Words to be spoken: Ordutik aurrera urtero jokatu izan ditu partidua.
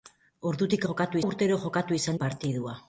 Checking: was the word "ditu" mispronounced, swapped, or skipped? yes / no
yes